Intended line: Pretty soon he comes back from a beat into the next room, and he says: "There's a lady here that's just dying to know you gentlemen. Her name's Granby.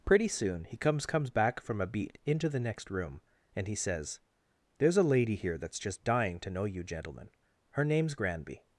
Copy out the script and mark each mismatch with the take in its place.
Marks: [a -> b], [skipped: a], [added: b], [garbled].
Pretty soon he comes [added: comes] back from a beat into the next room, and he says: "There's a lady here that's just dying to know you gentlemen. Her name's Granby.